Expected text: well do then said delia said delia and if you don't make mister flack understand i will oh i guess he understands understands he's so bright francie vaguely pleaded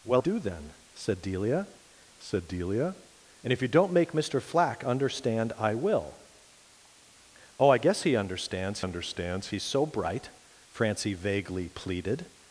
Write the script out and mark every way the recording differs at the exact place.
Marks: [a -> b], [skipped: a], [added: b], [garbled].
well do then said delia said delia and if you don't make mister flack understand i will oh i guess he understands understands he's so bright francie vaguely pleaded